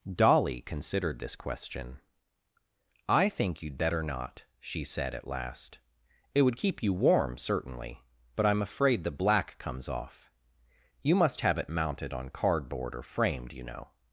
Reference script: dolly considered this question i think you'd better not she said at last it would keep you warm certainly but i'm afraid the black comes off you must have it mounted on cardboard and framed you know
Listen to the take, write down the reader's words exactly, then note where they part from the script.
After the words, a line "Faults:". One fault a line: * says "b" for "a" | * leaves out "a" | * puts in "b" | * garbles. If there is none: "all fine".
dolly considered this question i think you'd better not she said at last it would keep you warm certainly but i'm afraid the black comes off you must have it mounted on cardboard or framed you know
Faults:
* says "or" for "and"